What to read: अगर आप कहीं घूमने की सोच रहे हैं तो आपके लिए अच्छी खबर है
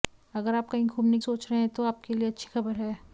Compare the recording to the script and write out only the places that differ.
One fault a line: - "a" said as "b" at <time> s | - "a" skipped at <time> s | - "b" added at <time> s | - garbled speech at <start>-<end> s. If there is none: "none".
- "की" skipped at 1.2 s